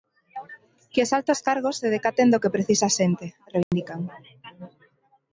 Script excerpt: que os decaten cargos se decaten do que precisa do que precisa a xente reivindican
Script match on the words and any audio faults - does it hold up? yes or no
no